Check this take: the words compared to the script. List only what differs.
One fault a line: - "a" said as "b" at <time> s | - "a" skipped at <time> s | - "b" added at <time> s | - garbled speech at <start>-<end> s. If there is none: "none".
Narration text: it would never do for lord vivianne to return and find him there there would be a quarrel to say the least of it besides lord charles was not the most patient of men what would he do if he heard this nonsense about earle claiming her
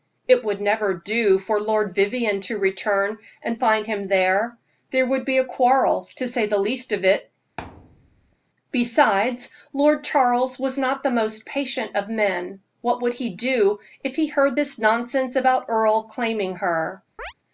none